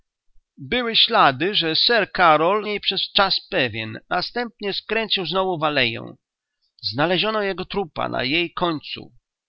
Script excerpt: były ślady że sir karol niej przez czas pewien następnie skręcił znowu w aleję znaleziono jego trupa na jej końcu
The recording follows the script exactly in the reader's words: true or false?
true